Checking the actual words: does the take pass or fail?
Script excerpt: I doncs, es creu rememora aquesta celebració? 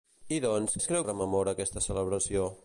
pass